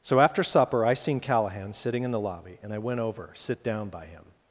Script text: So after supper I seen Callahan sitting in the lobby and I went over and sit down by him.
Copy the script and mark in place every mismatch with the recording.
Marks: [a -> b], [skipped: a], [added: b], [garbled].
So after supper I seen Callahan sitting in the lobby and I went over [skipped: and] sit down by him.